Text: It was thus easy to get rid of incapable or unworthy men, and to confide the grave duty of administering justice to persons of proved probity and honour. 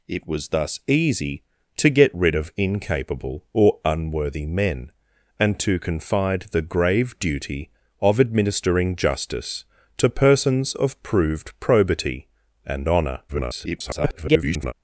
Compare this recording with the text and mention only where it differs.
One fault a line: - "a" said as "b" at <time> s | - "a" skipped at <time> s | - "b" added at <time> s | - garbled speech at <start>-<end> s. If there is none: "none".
- garbled speech at 13.3-14.7 s